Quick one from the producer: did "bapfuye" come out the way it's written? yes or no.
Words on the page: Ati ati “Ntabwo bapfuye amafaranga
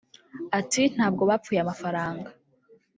yes